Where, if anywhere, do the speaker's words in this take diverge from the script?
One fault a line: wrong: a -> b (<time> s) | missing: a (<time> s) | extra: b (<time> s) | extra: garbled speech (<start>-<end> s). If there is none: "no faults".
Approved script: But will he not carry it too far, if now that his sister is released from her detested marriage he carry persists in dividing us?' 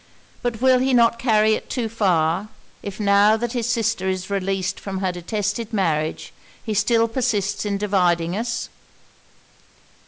wrong: carry -> still (6.7 s)